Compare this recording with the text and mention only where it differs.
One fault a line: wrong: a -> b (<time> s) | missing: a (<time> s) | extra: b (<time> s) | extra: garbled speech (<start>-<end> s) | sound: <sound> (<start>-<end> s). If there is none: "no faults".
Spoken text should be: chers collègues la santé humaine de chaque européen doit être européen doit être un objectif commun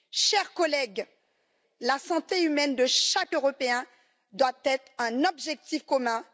missing: européen doit être (4.9 s)